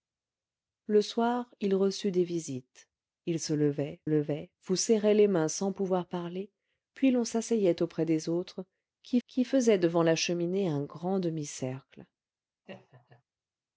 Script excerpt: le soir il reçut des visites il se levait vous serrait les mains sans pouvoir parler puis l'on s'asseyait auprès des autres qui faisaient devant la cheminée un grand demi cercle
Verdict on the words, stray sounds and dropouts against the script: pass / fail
fail